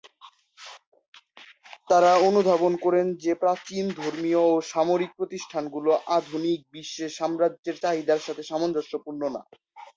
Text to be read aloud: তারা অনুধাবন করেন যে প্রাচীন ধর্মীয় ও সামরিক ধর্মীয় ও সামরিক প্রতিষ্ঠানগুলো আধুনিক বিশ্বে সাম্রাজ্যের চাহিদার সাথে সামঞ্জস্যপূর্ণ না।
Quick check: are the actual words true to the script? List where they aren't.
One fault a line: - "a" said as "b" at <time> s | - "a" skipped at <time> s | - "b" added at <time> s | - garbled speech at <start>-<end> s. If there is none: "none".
- "ধর্মীয় ও সামরিক" skipped at 5.1 s